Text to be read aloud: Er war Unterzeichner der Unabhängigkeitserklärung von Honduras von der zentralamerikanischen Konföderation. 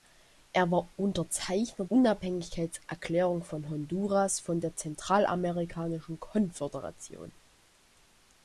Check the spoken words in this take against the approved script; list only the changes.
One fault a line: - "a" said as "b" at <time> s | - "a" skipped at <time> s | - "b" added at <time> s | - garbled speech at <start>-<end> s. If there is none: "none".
- "der" skipped at 1.9 s